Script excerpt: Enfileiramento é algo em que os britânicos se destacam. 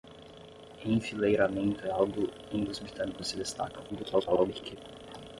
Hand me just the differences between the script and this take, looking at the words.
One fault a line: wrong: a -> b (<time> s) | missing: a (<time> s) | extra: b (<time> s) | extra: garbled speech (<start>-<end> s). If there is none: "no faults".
missing: que (2.6 s)
extra: garbled speech (3.9-4.8 s)